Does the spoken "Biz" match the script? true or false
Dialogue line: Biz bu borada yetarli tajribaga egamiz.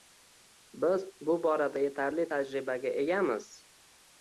true